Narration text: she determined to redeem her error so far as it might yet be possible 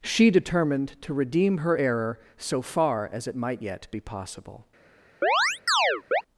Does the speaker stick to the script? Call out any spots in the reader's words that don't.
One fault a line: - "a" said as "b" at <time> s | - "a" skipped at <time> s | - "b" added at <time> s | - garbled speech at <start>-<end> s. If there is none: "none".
none